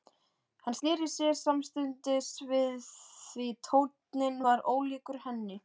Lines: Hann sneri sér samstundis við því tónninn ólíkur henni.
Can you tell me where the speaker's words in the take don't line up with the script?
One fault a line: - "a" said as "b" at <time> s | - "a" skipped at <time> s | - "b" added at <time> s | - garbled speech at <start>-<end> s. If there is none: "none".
- "var" added at 4.5 s